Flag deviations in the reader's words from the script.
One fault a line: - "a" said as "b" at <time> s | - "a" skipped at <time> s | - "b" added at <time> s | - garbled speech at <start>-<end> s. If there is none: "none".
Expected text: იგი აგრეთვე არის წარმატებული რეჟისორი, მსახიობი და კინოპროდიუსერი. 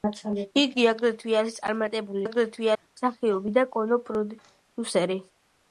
- "რეჟისორი" said as "აგრეთვე" at 2.2 s